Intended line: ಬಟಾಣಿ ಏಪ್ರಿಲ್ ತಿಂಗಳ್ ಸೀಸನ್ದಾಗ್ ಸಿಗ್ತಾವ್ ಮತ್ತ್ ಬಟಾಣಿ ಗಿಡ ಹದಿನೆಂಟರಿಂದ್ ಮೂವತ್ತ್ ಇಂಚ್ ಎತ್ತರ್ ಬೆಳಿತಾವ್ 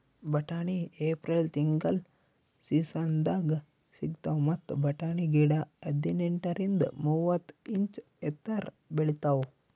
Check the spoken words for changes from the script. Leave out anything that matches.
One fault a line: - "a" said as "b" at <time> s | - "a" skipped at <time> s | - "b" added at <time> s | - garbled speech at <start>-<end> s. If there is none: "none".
none